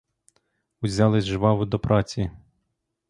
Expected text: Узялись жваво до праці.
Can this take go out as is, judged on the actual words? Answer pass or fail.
pass